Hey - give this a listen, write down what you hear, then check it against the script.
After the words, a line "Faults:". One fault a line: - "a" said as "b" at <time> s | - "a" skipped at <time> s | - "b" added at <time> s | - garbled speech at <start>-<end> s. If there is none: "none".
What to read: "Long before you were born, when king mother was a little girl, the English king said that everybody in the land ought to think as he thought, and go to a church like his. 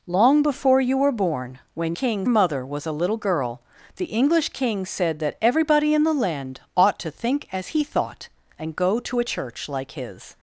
"Long before you were born, when king mother was a little girl, the English king said that everybody in the land ought to think as he thought, and go to a church like his.
Faults:
none